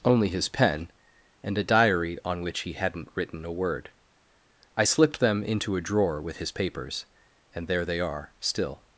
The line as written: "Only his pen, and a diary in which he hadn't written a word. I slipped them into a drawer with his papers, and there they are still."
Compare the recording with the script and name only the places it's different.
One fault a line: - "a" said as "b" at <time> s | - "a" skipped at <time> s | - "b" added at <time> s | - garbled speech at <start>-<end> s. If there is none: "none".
- "in" said as "on" at 2.2 s